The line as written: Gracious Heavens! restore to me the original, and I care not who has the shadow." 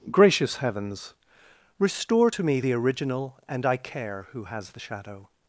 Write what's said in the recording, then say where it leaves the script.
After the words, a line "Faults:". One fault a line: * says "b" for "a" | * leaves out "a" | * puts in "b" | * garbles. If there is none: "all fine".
Gracious Heavens! restore to me the original, and I care who has the shadow."
Faults:
* leaves out "not"